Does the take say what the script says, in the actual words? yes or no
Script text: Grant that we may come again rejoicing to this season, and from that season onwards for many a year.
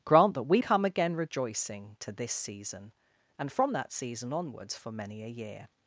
no